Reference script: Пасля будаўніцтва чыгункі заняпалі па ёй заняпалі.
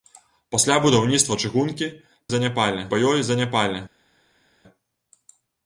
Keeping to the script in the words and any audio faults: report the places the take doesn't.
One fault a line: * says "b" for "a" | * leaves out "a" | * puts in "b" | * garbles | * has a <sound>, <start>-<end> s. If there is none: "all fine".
all fine